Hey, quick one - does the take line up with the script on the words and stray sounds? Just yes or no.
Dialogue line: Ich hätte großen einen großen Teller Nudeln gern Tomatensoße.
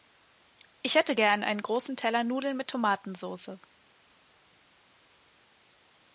no